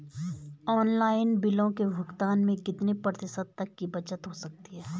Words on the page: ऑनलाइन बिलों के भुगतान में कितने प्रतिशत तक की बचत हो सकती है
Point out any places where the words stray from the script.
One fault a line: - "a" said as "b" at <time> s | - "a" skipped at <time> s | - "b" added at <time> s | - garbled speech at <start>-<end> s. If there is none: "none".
none